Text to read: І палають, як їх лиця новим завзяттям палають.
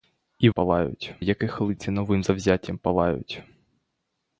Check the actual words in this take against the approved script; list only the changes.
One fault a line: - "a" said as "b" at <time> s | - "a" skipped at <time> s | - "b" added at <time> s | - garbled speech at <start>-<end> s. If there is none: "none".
none